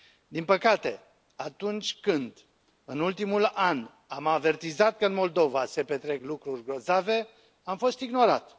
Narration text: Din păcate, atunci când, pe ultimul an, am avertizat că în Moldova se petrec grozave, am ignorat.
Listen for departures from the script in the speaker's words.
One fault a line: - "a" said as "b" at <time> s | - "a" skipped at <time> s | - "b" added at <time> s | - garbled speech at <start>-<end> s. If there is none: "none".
- "pe" said as "în" at 2.8 s
- "lucruri" added at 6.2 s
- "fost" added at 7.8 s